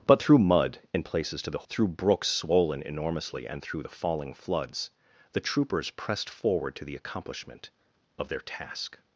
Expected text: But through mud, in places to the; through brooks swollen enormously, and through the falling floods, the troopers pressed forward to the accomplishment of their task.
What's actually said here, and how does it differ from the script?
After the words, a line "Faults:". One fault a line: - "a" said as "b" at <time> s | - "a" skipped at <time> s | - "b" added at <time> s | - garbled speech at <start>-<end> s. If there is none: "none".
But through mud, in places to the; through brooks swollen enormously, and through the falling floods, the troopers pressed forward to the accomplishment of their task.
Faults:
none